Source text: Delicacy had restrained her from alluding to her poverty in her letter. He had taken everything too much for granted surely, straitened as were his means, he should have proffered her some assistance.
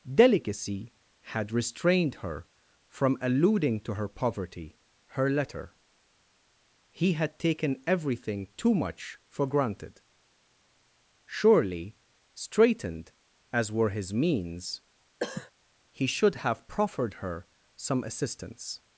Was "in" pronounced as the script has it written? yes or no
no